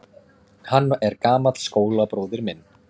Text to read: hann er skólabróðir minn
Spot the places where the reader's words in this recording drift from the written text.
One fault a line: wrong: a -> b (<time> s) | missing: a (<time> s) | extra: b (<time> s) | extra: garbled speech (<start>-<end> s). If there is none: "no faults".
extra: gamall (1.3 s)